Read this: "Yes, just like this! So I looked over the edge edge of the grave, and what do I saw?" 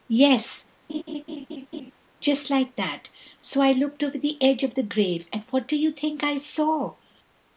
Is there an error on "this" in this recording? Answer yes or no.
yes